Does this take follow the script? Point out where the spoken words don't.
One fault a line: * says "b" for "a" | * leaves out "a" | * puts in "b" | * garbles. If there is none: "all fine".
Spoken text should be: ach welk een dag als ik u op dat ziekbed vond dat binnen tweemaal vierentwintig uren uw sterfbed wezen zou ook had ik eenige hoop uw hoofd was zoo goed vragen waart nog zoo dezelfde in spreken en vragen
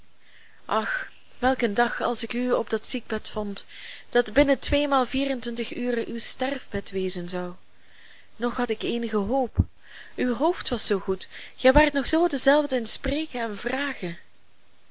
* says "nog" for "ook"
* says "gij" for "vragen"